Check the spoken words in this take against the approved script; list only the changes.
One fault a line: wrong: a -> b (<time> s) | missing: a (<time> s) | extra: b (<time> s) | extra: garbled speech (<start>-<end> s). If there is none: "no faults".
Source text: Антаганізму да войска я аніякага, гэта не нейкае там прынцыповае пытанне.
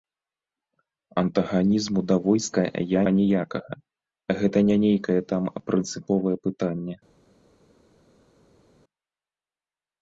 no faults